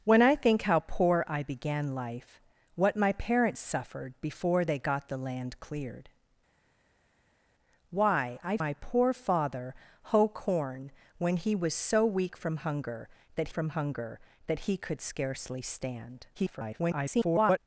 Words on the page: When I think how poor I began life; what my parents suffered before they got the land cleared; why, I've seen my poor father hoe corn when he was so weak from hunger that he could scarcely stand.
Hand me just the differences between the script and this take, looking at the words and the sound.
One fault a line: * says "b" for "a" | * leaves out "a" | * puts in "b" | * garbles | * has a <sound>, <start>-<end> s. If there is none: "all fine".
* leaves out "seen"
* puts in "from hunger that"
* garbles